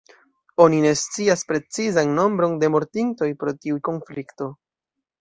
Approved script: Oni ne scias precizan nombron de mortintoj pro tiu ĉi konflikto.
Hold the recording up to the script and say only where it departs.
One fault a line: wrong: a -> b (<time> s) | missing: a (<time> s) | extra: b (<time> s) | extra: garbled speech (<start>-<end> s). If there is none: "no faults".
missing: ĉi (3.8 s)